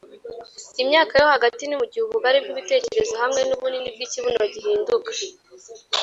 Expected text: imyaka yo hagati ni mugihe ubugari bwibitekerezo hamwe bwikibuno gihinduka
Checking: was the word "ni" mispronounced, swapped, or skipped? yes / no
no